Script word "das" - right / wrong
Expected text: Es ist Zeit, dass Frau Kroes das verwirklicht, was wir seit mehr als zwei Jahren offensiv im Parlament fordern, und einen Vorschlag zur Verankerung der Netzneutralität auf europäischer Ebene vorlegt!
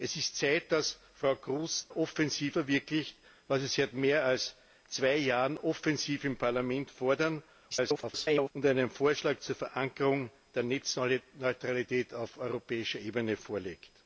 wrong